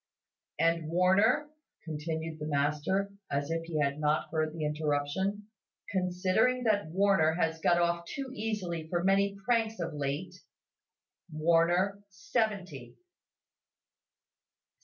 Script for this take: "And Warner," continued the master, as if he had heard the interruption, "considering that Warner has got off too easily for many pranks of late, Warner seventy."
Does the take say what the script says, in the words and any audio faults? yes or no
no